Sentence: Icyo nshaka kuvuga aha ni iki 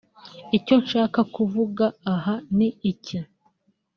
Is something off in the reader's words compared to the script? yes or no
no